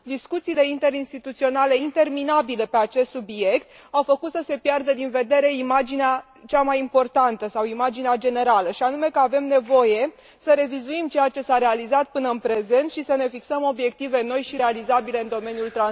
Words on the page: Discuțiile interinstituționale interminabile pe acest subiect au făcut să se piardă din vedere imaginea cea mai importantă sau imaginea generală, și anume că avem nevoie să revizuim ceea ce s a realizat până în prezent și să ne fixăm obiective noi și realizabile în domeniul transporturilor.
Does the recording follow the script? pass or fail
pass